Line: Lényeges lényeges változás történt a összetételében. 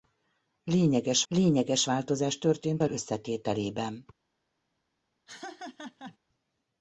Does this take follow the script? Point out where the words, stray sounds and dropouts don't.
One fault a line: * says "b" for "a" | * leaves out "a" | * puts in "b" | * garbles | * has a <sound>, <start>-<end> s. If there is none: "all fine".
* has a laugh, 5.3-6.2 s